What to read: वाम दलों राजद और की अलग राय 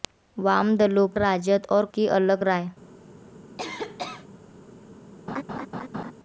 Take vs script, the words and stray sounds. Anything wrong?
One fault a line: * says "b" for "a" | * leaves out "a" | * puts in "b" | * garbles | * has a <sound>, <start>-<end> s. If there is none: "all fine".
* has a cough, 3.6-4.3 s
* has a laugh, 5.3-6.1 s